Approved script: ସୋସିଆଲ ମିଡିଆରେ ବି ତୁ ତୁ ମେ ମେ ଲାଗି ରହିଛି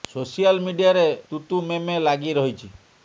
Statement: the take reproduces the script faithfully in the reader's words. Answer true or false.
false